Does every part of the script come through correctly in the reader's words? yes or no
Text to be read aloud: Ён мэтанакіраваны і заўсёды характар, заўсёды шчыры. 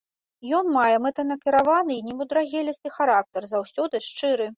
no